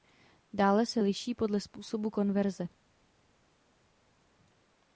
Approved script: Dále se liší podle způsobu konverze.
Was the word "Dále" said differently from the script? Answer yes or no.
no